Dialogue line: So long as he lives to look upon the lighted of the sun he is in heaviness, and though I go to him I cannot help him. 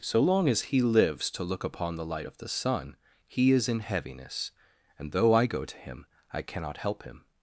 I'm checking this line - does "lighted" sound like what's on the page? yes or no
no